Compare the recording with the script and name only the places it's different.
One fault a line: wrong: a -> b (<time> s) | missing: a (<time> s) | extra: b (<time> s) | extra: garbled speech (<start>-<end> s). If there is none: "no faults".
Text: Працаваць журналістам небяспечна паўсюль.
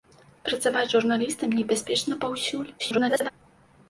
extra: garbled speech (2.8-3.3 s)